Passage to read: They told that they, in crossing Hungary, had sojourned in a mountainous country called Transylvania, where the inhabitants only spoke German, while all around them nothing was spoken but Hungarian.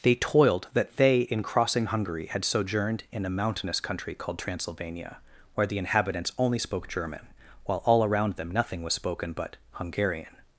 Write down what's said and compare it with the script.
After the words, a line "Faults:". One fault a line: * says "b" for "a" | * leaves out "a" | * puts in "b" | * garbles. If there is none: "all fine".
They toiled that they, in crossing Hungary, had sojourned in a mountainous country called Transylvania, where the inhabitants only spoke German, while all around them nothing was spoken but Hungarian.
Faults:
* says "toiled" for "told"